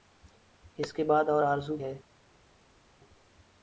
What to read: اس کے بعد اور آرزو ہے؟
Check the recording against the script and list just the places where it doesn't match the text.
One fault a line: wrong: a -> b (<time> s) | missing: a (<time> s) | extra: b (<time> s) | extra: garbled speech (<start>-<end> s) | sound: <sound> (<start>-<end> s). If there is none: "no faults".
no faults